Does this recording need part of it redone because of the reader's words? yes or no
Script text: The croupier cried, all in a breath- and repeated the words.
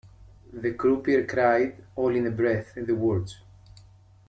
yes